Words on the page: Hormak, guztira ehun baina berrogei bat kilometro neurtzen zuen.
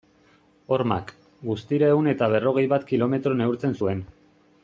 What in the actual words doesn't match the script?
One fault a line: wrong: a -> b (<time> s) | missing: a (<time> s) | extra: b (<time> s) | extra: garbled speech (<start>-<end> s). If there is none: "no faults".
wrong: baina -> eta (2.1 s)